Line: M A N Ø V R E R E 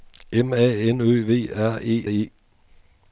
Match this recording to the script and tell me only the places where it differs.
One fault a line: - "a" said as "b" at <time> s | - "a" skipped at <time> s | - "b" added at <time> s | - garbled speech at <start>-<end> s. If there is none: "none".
- "R" skipped at 2.1 s